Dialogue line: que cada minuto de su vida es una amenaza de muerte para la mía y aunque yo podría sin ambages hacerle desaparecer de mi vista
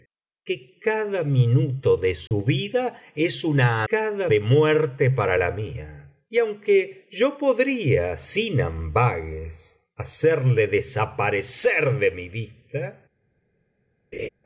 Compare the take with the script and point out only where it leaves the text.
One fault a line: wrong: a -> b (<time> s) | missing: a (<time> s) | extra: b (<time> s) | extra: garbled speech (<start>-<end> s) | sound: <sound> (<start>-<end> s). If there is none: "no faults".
sound: dropout (2.3-2.3 s)
wrong: amenaza -> cada (3.9 s)
sound: laugh (14.1-14.3 s)